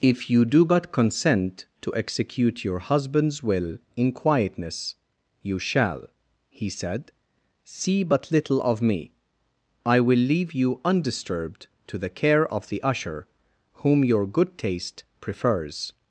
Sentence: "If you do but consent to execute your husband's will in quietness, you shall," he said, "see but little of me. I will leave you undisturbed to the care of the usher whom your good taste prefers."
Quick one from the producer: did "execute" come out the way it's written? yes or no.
yes